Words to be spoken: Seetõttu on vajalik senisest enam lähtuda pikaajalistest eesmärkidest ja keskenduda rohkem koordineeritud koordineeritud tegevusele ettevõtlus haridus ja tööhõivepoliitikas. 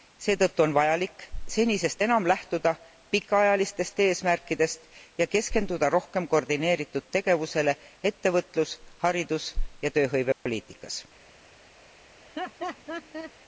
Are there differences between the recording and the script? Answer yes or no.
yes